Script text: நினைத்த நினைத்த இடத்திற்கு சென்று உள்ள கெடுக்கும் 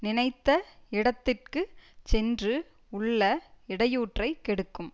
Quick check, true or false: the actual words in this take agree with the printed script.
false